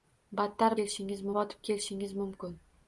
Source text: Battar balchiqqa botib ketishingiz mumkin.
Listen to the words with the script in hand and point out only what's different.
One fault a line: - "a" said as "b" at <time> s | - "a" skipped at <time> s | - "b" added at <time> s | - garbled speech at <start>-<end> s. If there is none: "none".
- "balchiqqa" said as "ketishingiz" at 0.8 s